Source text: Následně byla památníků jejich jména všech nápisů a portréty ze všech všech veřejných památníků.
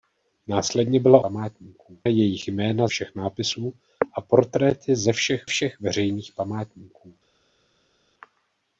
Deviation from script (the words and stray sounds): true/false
false